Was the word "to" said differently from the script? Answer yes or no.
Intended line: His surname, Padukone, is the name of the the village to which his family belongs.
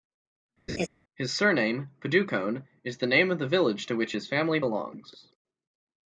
no